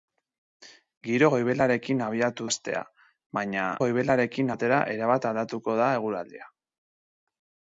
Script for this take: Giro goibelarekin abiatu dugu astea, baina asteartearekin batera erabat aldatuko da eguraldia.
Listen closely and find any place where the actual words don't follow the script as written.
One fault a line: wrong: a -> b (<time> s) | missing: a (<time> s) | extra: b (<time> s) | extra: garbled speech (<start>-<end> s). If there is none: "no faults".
missing: dugu (2.5 s)
wrong: asteartearekin -> goibelarekin (3.8 s)